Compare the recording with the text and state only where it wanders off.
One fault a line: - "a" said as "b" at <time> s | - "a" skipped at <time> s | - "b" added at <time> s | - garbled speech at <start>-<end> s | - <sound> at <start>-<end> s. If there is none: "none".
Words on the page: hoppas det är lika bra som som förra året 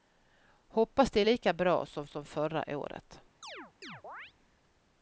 - chirp at 3.4-4.3 s